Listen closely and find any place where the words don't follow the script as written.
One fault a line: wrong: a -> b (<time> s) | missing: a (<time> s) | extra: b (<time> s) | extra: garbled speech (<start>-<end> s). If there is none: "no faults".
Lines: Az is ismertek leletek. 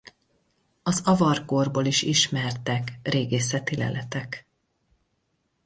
extra: avar korból (1.1 s)
extra: régészeti (3.0 s)